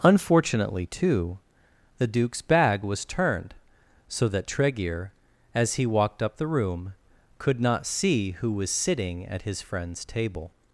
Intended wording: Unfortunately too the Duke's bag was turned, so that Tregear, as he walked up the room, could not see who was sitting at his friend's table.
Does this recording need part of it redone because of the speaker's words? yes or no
no